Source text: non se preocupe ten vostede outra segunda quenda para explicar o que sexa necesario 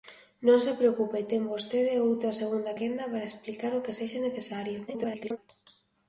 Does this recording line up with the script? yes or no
no